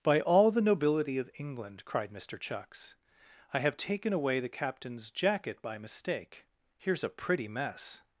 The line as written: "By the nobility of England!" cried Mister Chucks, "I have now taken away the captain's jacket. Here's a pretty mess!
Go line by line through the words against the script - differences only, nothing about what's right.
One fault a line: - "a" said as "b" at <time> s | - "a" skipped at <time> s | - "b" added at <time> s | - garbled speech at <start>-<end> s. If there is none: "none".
- "all" added at 0.2 s
- "now" skipped at 3.8 s
- "by mistake" added at 5.6 s